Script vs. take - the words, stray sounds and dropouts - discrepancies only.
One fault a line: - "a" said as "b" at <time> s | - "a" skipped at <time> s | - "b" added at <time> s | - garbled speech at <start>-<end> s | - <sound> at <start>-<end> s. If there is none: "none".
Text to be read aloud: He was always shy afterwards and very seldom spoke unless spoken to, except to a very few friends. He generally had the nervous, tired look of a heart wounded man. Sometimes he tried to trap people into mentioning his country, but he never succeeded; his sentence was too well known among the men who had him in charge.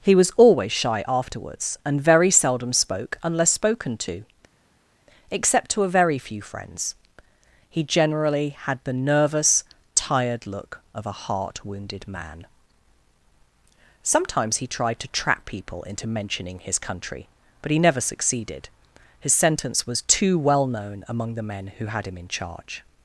none